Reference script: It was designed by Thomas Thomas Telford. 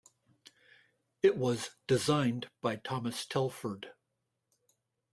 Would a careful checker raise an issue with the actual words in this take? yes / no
yes